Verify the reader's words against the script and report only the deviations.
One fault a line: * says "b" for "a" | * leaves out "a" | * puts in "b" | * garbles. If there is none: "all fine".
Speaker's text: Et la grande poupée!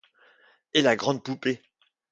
all fine